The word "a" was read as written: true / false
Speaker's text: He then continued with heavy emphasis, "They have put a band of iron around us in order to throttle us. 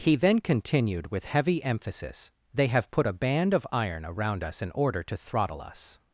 true